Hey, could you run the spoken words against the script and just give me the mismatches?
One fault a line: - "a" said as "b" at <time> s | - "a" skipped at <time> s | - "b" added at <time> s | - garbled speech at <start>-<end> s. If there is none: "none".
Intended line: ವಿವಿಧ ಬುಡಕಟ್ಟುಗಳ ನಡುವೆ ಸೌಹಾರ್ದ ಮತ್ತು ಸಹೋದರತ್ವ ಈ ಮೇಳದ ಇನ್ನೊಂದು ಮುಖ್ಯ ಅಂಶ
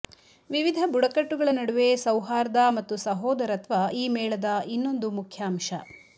none